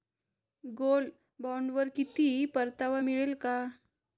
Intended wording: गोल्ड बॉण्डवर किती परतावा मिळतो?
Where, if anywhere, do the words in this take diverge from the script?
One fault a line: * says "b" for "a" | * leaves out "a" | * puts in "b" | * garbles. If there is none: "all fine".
all fine